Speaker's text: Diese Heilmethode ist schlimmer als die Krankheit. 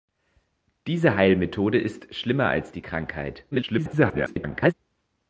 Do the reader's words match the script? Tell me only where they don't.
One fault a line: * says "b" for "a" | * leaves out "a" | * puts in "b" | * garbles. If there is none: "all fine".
* garbles